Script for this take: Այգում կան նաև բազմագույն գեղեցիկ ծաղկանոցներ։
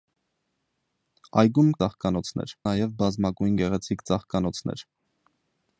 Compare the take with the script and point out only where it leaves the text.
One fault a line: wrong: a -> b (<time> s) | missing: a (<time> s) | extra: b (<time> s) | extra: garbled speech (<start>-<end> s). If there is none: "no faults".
wrong: կան -> ծաղկանոցներ (1.8 s)